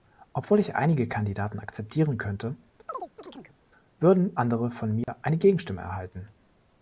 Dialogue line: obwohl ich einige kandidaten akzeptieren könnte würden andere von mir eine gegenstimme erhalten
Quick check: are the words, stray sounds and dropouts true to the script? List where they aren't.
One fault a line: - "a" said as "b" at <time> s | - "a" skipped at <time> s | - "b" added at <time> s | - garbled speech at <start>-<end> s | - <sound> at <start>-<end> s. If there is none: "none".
- chirp at 2.9-3.6 s
- dropout at 5.0-5.1 s